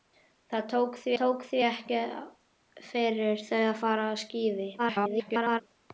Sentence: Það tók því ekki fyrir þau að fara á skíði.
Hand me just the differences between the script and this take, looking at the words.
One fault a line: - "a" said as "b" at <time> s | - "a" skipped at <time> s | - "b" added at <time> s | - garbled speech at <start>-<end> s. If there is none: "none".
- "tók því" added at 1.2 s
- garbled speech at 4.8-5.6 s